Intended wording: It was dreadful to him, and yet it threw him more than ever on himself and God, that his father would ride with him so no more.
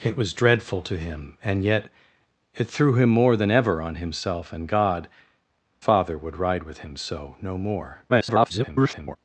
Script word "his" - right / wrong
wrong